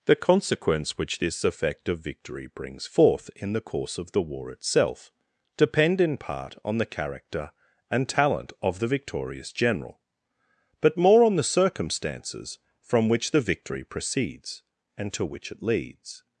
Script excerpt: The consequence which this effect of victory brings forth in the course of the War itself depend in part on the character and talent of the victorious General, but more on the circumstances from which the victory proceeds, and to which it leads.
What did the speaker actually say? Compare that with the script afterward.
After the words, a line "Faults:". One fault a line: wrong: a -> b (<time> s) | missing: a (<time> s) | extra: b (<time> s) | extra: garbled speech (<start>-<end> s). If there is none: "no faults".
The consequence which this effect of victory brings forth in the course of the War itself depend in part on the character and talent of the victorious General, but more on the circumstances from which the victory proceeds, and to which it leads.
Faults:
no faults